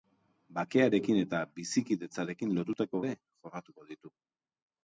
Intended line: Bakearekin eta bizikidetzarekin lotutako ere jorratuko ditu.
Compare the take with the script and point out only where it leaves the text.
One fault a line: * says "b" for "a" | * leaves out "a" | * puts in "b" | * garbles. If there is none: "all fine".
all fine